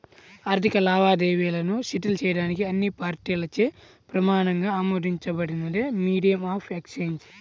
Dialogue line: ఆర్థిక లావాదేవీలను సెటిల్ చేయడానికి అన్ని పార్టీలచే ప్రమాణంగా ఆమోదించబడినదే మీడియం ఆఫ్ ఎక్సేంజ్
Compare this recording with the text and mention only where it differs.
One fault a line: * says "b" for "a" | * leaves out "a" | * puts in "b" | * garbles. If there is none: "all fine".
all fine